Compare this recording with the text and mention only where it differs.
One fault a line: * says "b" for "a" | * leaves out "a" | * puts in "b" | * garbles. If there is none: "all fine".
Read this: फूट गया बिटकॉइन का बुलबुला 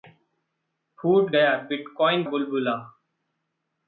* leaves out "का"